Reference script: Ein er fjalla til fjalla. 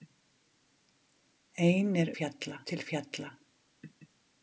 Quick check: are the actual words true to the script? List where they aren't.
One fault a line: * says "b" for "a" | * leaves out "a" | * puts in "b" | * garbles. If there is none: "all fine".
all fine